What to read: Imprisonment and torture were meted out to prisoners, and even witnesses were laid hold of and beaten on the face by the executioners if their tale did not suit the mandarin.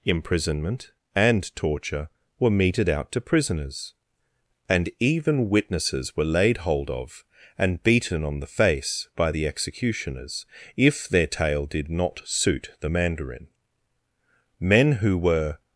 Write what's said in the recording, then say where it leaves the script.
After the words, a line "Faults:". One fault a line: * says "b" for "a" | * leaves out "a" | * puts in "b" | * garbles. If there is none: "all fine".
Imprisonment and torture were meted out to prisoners, and even witnesses were laid hold of and beaten on the face by the executioners if their tale did not suit the mandarin. Men who were
Faults:
* puts in "Men who were"